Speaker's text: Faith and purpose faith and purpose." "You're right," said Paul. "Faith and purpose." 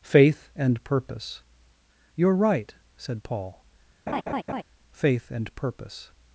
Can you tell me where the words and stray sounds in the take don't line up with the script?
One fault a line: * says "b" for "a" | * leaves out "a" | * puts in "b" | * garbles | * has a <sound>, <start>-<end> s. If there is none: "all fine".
* leaves out "faith and purpose"
* has a laugh, 4.1-4.6 s